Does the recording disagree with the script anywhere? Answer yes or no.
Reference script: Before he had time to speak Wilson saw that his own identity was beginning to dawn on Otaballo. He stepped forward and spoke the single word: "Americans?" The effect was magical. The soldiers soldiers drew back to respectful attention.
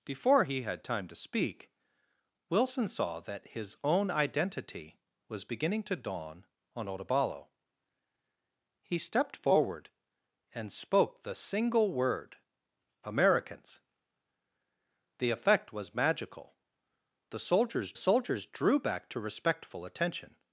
no